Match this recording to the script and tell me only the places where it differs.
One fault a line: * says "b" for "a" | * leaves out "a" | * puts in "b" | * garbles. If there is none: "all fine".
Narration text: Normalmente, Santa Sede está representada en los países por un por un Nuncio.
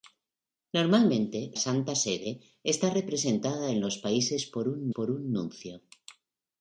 all fine